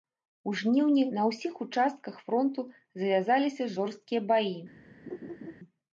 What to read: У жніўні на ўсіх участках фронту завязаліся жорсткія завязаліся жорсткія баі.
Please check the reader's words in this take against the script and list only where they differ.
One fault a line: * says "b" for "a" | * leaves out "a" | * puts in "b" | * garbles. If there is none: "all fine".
* leaves out "завязаліся жорсткія"